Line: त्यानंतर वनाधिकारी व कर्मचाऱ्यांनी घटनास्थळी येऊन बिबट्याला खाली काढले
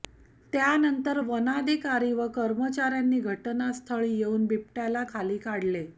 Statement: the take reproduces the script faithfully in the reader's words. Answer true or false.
true